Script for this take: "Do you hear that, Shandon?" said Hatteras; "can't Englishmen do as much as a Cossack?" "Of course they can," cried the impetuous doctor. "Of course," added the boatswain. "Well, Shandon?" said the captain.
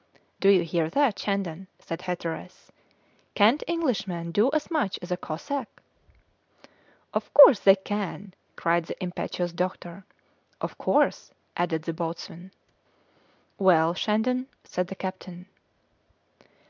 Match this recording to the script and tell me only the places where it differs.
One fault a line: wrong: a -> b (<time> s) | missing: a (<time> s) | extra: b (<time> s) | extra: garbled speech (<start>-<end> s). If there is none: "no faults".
no faults